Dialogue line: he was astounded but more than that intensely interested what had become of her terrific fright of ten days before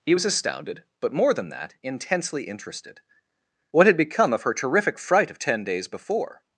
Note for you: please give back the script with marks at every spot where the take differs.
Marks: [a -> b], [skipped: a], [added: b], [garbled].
he was astounded but more than that intensely interested what had become of her terrific fright of ten days before